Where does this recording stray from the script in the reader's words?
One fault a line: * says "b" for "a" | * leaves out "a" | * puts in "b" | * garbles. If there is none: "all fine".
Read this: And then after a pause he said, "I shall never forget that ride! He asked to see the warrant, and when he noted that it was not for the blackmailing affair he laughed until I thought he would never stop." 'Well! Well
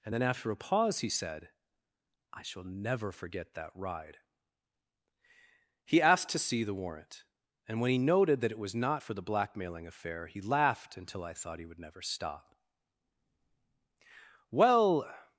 * leaves out "Well"